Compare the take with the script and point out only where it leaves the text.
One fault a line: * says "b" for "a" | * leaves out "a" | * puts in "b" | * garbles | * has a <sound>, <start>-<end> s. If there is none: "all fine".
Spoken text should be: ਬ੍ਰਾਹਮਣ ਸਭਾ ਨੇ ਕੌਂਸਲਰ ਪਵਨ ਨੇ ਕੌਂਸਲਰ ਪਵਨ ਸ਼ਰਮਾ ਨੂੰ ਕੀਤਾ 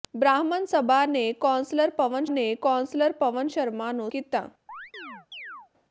* has a chirp, 4.7-5.7 s